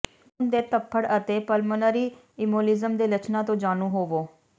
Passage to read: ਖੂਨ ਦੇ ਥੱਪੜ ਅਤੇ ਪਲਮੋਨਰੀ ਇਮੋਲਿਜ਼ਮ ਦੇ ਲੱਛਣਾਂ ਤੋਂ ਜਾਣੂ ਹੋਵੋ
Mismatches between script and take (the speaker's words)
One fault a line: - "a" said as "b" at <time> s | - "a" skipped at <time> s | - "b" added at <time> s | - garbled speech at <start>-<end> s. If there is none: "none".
none